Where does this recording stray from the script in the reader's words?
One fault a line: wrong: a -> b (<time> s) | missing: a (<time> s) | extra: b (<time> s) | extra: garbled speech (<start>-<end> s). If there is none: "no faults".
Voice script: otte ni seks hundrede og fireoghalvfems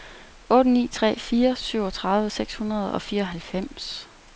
extra: tre fire syvogtredive (0.9 s)